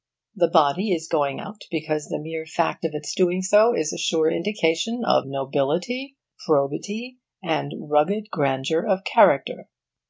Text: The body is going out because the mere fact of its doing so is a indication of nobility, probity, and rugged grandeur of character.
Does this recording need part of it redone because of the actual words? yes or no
yes